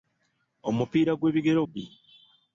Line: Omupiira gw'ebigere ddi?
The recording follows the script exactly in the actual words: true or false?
true